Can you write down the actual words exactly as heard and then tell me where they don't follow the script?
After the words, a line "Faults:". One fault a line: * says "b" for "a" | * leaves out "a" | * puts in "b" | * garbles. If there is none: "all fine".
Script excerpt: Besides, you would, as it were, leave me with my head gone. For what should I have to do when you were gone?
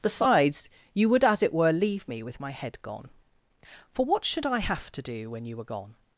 Besides, you would, as it were, leave me with my head gone. For what should I have to do when you were gone?
Faults:
all fine